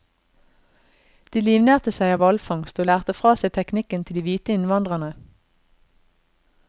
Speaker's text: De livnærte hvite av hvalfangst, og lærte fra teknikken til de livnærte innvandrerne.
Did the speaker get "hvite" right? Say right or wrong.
wrong